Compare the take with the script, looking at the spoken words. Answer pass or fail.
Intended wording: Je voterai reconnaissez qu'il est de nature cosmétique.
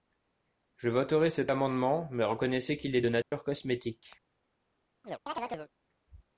fail